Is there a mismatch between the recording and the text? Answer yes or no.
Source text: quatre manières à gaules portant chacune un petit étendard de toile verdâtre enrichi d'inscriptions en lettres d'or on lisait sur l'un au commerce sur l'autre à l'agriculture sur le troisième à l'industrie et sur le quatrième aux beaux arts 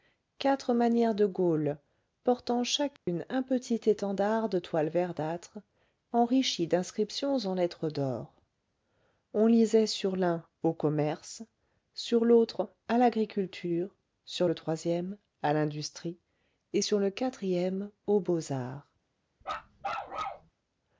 yes